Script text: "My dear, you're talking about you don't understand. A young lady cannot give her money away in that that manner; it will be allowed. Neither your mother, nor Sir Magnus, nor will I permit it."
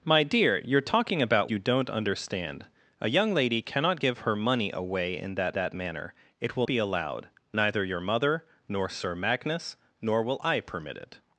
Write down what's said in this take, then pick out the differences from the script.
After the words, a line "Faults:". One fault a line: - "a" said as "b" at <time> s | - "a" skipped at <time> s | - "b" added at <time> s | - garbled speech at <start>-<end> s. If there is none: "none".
"My dear, you're talking about you don't understand. A young lady cannot give her money away in that that manner; it will be allowed. Neither your mother, nor Sir Magnus, nor will I permit it."
Faults:
none